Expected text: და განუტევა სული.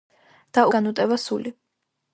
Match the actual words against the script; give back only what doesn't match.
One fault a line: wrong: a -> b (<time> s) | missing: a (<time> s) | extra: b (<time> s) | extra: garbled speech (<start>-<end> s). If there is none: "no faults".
no faults